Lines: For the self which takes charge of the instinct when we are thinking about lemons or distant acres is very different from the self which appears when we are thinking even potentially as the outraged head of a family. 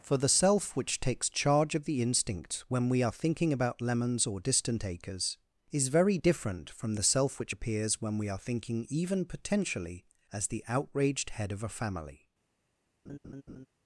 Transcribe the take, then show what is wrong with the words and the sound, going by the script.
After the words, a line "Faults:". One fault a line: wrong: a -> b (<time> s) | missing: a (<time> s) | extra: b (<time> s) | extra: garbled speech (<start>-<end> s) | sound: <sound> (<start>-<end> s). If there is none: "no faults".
For the self which takes charge of the instinct when we are thinking about lemons or distant acres is very different from the self which appears when we are thinking even potentially as the outraged head of a family.
Faults:
sound: laugh (13.1-13.7 s)